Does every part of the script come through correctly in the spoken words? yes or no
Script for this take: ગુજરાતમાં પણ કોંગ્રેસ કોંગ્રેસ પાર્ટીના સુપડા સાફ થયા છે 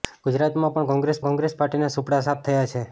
yes